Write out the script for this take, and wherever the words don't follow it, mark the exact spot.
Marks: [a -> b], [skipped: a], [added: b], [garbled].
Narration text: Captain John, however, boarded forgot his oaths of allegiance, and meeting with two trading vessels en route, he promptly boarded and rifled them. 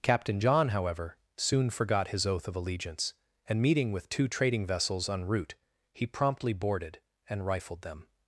Captain John, however, [boarded -> soon] forgot his [oaths -> oath] of allegiance, and meeting with two trading vessels en route, he promptly boarded and rifled them.